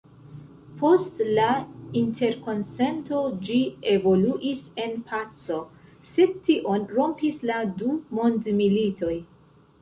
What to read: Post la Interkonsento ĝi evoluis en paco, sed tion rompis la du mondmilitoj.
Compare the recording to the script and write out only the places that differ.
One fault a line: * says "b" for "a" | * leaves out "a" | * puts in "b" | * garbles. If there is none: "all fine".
all fine